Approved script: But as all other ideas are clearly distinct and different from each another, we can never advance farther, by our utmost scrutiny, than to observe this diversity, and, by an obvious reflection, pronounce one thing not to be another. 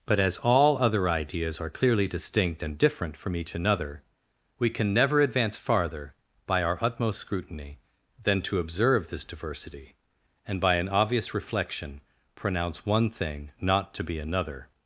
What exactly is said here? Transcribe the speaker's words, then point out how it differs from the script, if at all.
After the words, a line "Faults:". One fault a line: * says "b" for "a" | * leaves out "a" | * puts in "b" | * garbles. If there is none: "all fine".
But as all other ideas are clearly distinct and different from each another, we can never advance farther, by our utmost scrutiny, than to observe this diversity, and, by an obvious reflection, pronounce one thing not to be another.
Faults:
all fine